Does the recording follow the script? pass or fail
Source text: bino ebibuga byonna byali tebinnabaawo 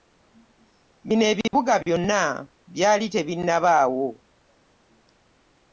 pass